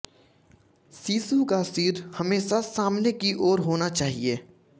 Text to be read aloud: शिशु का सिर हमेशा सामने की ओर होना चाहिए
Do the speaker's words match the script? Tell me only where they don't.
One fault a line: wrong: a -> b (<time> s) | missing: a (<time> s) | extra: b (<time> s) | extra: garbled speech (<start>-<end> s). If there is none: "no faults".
no faults